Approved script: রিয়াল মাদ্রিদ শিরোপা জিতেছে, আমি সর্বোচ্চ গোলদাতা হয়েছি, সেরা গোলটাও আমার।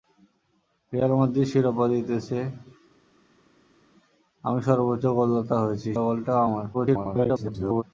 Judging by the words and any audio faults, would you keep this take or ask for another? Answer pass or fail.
fail